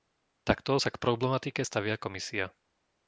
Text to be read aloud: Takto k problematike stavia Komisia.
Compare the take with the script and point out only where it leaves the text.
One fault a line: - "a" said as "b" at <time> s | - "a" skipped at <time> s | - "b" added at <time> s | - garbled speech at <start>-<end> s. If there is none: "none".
- "sa" added at 0.8 s